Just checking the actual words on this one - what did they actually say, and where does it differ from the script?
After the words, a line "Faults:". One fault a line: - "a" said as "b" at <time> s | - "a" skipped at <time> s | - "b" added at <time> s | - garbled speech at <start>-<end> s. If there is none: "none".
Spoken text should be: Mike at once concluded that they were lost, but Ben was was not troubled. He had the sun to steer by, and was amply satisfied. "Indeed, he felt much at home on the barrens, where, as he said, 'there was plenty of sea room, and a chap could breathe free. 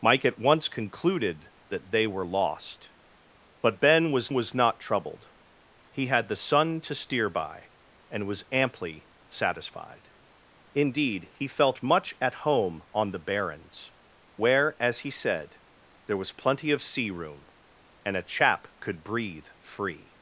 Mike at once concluded that they were lost, but Ben was was not troubled. He had the sun to steer by, and was amply satisfied. "Indeed, he felt much at home on the barrens, where, as he said, 'there was plenty of sea room, and a chap could breathe free.
Faults:
none